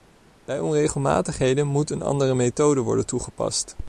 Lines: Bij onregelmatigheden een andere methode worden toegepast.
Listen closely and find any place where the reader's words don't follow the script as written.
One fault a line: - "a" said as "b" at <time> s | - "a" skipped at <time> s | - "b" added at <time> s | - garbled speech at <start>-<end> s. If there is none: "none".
- "moet" added at 1.7 s